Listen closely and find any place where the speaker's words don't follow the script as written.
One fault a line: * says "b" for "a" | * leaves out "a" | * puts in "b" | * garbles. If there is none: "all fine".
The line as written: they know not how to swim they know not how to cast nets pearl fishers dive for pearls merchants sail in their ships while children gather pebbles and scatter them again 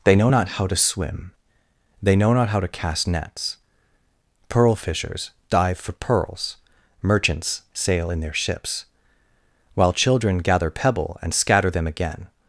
* says "pebble" for "pebbles"